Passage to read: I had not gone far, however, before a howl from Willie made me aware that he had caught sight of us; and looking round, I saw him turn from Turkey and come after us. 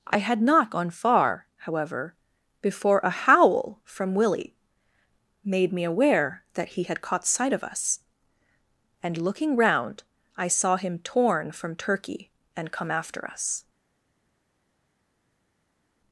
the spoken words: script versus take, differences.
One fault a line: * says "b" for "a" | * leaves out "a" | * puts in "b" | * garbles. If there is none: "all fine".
* says "torn" for "turn"